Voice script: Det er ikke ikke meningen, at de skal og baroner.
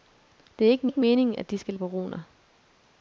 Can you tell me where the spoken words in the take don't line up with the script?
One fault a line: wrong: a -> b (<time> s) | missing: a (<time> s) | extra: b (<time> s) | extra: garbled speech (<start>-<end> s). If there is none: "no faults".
no faults